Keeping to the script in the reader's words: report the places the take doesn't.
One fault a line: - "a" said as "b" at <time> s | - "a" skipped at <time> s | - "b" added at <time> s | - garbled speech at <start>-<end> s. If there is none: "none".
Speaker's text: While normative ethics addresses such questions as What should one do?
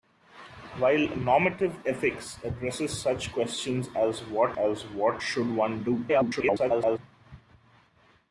- "as What" added at 4.6 s
- garbled speech at 6.1-7.0 s